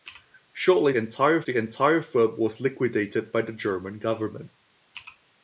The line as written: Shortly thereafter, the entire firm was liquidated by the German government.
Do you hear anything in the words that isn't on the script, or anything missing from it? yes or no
yes